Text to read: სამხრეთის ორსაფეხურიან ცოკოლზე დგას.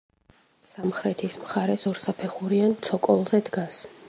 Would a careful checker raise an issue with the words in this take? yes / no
yes